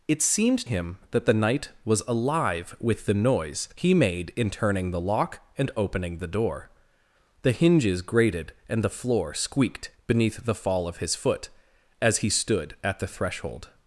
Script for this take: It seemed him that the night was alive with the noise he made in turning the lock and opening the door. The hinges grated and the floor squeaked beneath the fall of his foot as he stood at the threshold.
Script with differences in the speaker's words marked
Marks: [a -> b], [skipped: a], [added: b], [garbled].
It seemed him that the night was alive with the noise he made in turning the lock and opening the door. The hinges grated and the floor squeaked beneath the fall of his foot as he stood at the threshold.